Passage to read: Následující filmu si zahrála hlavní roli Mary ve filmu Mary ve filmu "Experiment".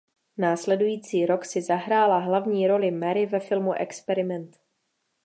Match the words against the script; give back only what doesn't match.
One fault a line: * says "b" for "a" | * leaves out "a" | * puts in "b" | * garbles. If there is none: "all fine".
* says "rok" for "filmu"
* leaves out "Mary ve filmu"